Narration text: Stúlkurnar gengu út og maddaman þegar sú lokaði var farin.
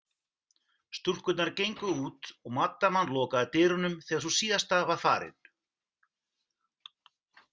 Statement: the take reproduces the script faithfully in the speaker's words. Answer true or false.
false